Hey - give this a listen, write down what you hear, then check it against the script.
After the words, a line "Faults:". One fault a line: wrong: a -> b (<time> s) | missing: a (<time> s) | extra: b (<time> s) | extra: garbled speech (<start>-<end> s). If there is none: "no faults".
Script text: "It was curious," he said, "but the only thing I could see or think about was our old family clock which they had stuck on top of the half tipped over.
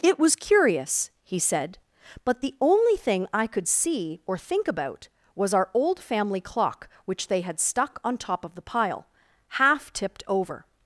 "It was curious," he said, "but the only thing I could see or think about was our old family clock which they had stuck on top of the pile, half tipped over.
Faults:
extra: pile (8.6 s)